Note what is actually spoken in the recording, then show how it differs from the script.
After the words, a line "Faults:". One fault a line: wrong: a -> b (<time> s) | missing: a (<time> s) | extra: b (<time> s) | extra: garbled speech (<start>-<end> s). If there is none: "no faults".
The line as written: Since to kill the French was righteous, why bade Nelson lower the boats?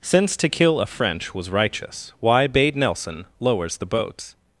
Since to kill a French was righteous, why bade Nelson lowers the boats?
Faults:
wrong: the -> a (0.8 s)
wrong: lower -> lowers (3.4 s)